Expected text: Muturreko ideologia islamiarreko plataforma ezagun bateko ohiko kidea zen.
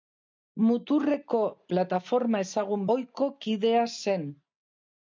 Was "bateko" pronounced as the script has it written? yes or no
no